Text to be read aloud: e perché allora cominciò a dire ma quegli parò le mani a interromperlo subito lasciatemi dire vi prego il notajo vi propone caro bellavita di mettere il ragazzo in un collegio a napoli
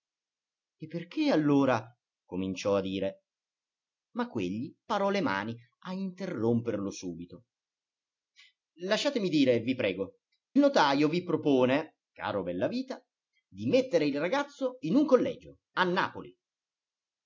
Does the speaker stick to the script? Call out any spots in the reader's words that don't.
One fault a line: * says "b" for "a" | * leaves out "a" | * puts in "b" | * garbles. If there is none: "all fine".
* leaves out "il"